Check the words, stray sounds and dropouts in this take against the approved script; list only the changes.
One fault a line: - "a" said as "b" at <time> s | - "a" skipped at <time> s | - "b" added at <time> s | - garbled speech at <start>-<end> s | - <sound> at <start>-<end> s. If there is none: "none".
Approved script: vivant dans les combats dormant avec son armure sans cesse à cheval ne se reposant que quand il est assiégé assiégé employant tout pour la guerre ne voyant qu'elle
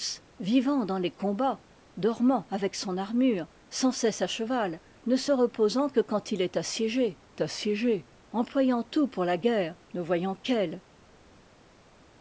none